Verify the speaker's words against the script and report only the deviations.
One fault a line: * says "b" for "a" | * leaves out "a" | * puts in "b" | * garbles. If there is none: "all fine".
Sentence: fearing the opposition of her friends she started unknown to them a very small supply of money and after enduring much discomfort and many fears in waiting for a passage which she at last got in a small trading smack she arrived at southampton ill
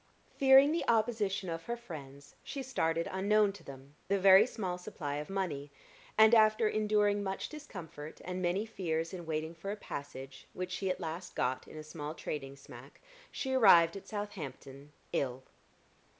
all fine